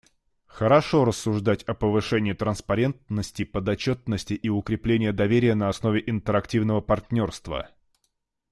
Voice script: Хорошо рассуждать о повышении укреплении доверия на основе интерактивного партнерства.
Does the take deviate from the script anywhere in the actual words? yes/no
yes